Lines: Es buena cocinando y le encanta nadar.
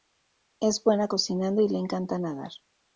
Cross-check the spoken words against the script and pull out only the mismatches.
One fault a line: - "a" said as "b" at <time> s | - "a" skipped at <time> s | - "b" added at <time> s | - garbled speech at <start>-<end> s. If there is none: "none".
none